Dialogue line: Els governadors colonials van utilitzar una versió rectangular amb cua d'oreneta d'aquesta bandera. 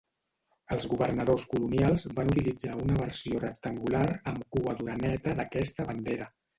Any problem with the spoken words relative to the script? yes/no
no